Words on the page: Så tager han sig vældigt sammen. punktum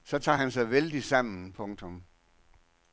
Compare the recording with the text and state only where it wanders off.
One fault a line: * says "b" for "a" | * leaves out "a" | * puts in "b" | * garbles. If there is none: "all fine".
all fine